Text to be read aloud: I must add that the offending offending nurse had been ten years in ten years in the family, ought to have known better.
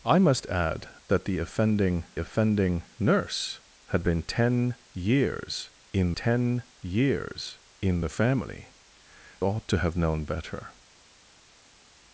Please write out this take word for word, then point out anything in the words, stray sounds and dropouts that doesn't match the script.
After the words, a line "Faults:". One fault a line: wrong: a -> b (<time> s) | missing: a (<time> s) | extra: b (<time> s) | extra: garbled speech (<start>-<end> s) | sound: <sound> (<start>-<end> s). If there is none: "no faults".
I must add that the offending offending nurse had been ten years in ten years in the family, ought to have known better.
Faults:
no faults